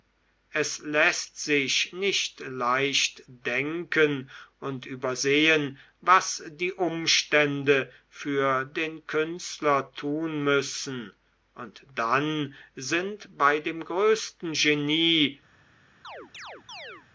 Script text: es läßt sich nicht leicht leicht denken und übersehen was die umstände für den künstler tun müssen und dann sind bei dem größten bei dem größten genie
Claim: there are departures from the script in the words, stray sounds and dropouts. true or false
true